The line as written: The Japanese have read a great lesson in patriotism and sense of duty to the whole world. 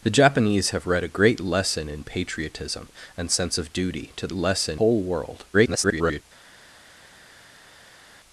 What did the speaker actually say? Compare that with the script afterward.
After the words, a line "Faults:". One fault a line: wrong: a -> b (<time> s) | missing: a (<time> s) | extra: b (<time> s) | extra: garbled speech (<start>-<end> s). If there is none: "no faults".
The Japanese have read a great lesson in patriotism and sense of duty to lesson whole world. [garbled]
Faults:
wrong: the -> lesson (4.3 s)
extra: garbled speech (5.5-6.2 s)